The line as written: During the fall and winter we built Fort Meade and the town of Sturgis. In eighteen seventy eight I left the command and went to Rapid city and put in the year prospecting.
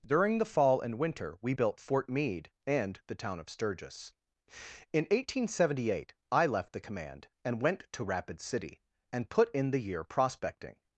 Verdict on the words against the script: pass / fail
pass